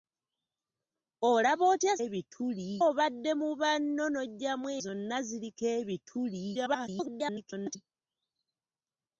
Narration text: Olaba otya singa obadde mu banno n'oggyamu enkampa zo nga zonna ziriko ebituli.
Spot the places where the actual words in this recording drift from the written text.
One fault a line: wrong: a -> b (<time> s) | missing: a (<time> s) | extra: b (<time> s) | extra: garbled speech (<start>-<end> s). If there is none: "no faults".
wrong: singa -> ebituli (2.0 s)
missing: enkampa zo nga (4.7 s)
extra: garbled speech (6.5-7.8 s)